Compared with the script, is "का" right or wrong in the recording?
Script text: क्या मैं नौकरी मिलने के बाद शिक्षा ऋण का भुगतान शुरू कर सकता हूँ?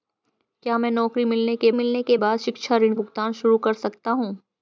wrong